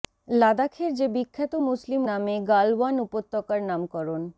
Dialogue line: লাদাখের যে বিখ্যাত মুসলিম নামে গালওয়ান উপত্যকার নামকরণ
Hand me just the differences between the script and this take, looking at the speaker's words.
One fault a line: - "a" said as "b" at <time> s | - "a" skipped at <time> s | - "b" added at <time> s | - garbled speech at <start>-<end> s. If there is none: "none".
none